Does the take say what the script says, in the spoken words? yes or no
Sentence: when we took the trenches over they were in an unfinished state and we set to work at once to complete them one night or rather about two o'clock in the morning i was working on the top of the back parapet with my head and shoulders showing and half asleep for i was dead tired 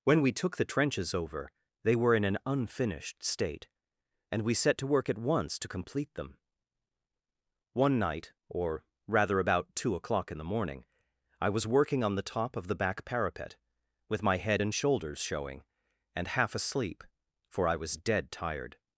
yes